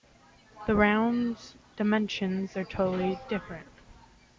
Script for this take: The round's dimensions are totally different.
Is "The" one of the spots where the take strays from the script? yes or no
no